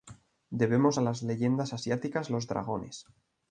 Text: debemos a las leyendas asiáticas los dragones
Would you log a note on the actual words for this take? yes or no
no